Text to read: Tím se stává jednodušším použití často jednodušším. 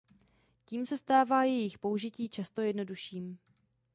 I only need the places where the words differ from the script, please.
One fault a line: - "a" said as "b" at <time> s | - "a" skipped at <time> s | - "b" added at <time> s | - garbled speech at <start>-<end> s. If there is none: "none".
- "jednodušším" said as "jejich" at 1.4 s